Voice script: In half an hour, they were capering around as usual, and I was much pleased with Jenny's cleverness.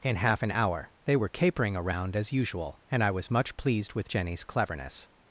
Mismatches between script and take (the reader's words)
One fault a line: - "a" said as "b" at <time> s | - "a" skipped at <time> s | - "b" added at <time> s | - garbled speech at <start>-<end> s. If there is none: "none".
none